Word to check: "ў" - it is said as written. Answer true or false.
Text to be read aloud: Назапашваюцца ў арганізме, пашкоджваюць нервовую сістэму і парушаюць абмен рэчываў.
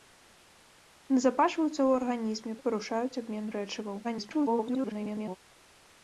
true